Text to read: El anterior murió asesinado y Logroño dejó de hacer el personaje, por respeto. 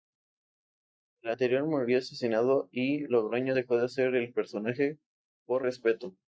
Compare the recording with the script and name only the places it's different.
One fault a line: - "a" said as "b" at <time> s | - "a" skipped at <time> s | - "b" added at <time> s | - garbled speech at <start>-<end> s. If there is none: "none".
none